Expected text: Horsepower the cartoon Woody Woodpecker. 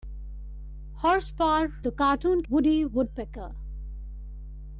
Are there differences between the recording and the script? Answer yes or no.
no